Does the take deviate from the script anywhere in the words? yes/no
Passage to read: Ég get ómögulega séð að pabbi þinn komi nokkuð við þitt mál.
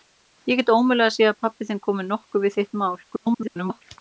yes